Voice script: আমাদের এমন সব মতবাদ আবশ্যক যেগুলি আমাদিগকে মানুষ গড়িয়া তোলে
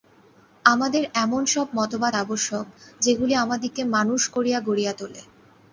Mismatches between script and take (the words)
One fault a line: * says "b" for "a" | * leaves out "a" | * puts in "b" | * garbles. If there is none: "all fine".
* puts in "করিয়া"